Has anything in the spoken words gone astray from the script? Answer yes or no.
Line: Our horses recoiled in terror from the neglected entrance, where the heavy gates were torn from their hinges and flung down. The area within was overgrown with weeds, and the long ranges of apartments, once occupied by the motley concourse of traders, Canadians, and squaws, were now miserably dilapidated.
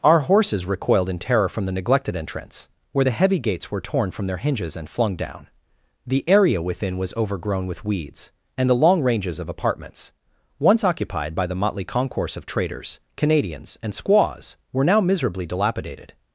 no